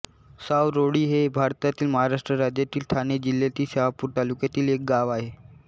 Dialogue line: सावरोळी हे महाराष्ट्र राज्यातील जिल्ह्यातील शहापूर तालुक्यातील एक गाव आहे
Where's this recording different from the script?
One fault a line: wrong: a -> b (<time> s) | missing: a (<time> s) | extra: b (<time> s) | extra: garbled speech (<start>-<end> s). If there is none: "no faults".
extra: भारतातील (1.3 s)
extra: ठाणे (2.9 s)